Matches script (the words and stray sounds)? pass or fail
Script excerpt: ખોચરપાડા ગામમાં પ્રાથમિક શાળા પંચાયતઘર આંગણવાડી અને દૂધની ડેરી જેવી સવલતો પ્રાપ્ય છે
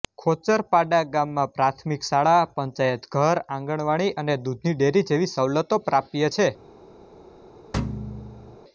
fail